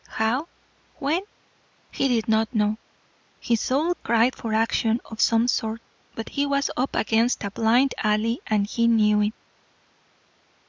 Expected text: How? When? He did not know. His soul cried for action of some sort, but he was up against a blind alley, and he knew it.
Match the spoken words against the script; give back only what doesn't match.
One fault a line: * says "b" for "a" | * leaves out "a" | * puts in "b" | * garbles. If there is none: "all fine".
all fine